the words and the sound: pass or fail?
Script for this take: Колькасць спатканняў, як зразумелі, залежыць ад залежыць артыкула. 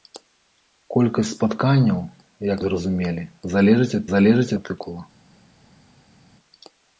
pass